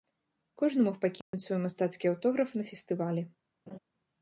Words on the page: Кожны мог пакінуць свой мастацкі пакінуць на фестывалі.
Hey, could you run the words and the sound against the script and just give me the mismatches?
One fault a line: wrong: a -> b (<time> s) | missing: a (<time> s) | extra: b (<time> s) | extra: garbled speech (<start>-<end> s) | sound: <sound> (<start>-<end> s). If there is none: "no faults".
sound: dropout (1.2-1.3 s)
wrong: пакінуць -> аўтограф (2.1 s)
sound: laugh (3.7-3.8 s)